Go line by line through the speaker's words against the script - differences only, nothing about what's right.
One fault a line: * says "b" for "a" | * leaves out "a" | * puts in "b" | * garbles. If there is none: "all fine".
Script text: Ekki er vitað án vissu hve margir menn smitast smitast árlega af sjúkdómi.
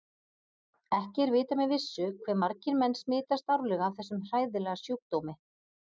* says "með" for "án"
* leaves out "smitast"
* puts in "þessum hræðilega"